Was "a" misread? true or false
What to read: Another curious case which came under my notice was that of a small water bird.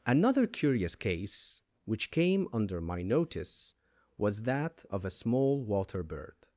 false